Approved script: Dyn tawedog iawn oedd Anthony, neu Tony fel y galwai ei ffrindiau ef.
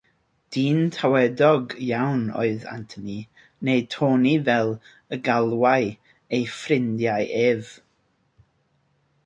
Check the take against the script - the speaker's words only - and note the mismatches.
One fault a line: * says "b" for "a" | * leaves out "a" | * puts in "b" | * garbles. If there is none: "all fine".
all fine